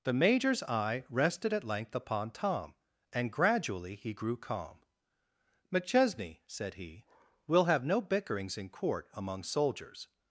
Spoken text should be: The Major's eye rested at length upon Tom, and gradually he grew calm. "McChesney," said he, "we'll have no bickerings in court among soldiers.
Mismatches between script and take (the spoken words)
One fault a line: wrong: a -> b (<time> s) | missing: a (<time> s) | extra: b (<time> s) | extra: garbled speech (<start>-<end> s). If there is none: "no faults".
no faults